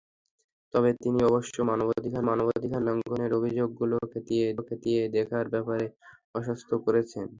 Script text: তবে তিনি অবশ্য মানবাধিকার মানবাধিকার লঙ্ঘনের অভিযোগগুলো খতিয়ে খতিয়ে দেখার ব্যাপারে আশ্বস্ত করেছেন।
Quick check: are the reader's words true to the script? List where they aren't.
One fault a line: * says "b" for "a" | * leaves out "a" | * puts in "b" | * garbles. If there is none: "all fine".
all fine